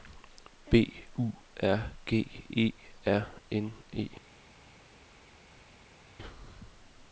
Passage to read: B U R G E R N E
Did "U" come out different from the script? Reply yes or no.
no